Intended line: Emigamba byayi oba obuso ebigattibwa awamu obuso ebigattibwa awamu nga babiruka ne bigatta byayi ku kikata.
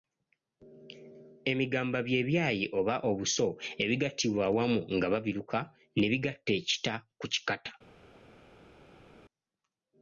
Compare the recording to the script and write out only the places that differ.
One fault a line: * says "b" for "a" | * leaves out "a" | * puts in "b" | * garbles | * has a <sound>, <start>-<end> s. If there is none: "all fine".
* puts in "bye"
* leaves out "obuso ebigattibwa awamu"
* says "ekita" for "byayi"